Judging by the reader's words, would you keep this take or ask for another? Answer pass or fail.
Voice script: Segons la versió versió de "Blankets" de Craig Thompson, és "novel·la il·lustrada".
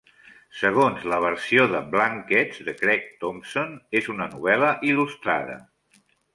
fail